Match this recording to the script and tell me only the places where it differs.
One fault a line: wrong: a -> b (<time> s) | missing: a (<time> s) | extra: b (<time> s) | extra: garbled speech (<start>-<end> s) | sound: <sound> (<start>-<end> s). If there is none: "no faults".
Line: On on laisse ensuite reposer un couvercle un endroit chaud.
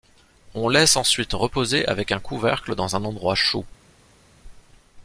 missing: on (0.7 s)
extra: avec (1.9 s)
extra: dans (2.7 s)